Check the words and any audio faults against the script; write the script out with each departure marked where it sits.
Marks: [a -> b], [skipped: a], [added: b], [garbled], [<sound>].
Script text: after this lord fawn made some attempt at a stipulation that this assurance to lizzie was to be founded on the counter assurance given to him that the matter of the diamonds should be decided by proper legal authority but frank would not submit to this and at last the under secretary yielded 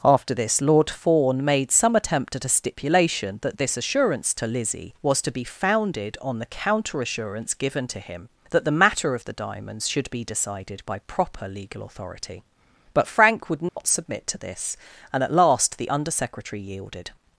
after this lord fawn made some attempt at a stipulation that this assurance to lizzie was to be founded on the counter assurance given to him that the matter of the diamonds should be decided by proper legal authority but frank would not [dropout] submit to this and at last the under secretary yielded